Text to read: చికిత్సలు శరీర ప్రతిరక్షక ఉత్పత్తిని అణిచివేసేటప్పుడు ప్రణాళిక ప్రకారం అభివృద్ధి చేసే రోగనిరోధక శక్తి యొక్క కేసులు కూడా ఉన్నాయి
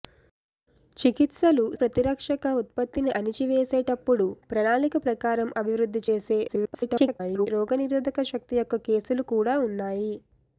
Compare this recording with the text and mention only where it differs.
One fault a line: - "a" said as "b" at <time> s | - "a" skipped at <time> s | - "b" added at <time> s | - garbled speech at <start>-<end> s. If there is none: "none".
- "శరీర" skipped at 1.6 s
- garbled speech at 6.5-7.5 s